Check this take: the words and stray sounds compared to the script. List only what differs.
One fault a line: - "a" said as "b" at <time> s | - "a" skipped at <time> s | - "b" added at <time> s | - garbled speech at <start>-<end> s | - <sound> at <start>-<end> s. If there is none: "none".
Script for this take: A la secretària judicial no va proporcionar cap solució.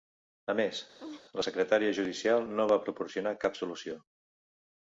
- "més" added at 0.6 s
- laugh at 1.0-1.2 s